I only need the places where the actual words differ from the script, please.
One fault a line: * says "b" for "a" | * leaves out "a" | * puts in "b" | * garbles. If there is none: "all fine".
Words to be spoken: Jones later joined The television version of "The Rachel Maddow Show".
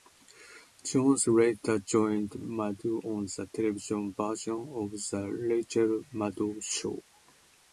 * puts in "Maddow on"